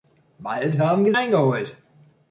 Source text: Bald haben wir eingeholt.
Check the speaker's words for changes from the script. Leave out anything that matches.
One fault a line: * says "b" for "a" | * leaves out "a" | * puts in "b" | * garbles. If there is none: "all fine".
all fine